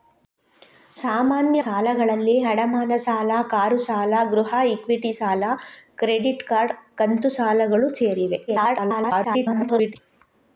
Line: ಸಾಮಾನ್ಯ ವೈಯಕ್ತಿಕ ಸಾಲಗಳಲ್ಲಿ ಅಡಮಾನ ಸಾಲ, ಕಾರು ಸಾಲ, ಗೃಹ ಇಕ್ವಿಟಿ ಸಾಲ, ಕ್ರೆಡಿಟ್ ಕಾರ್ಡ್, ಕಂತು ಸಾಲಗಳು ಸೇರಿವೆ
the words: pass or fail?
fail